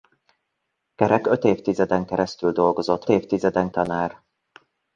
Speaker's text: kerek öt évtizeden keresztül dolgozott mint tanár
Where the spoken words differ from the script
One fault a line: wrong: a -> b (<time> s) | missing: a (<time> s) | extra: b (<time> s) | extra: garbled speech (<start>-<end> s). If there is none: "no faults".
wrong: mint -> évtizeden (3.1 s)